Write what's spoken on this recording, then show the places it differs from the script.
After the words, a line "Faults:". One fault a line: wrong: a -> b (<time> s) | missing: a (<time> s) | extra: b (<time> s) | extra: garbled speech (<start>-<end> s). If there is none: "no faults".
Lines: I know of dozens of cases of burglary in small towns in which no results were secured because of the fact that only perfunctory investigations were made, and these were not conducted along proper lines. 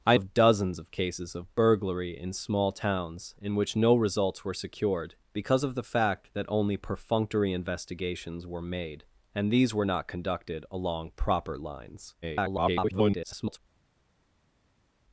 I of dozens of cases of burglary in small towns in which no results were secured because of the fact that only perfunctory investigations were made, and these were not conducted along proper lines. [garbled]
Faults:
missing: know (0.2 s)
extra: garbled speech (12.2-13.6 s)